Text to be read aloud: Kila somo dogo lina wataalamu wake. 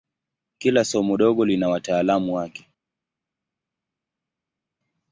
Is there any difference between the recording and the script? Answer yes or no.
no